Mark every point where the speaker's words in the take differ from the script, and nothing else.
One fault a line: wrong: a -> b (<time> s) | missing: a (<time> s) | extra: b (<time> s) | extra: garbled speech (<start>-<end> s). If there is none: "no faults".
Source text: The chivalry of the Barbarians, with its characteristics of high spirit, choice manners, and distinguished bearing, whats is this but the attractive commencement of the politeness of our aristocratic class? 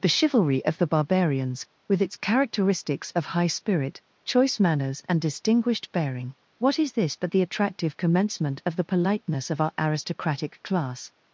wrong: whats -> what (6.6 s)